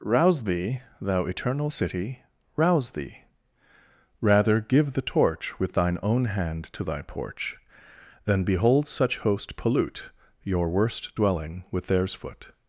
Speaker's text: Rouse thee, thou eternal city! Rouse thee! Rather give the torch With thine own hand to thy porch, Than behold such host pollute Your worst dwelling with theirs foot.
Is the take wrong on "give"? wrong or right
right